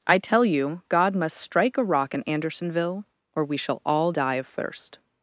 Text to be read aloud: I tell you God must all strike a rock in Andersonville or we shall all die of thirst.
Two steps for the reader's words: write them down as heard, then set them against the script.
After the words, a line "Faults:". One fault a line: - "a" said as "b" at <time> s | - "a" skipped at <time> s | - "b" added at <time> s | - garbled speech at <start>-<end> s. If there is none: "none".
I tell you God must strike a rock in Andersonville or we shall all die of thirst.
Faults:
- "all" skipped at 1.4 s